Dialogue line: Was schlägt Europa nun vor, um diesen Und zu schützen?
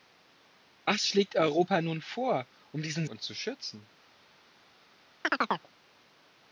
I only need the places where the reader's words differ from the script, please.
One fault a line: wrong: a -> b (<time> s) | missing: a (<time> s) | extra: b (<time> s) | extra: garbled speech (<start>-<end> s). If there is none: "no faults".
no faults